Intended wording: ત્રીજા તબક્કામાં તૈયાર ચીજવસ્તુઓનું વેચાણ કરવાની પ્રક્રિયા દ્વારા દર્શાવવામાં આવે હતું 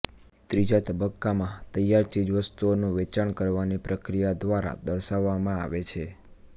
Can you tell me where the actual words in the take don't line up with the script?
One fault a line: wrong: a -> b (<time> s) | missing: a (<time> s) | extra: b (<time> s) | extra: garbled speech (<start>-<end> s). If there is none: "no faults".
wrong: હતું -> છે (5.8 s)